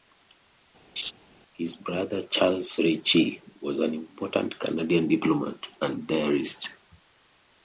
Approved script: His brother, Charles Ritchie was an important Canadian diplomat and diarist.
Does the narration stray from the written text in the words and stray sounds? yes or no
yes